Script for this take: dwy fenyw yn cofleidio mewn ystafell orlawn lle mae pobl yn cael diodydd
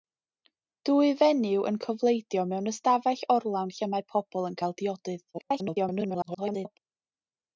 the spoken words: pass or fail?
fail